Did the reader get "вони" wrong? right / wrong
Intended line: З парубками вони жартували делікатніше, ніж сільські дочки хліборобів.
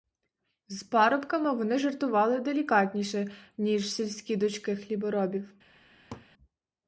right